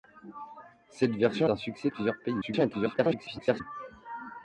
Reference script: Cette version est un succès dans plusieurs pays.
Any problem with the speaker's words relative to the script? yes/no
yes